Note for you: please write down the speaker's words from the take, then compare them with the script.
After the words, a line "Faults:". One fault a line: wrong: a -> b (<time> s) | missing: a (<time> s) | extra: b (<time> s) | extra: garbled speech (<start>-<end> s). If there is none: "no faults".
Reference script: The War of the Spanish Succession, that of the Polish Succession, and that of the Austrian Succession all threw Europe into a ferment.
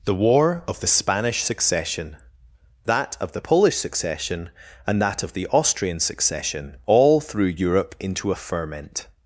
The War of the Spanish Succession, that of the Polish Succession, and that of the Austrian Succession all threw Europe into a ferment.
Faults:
no faults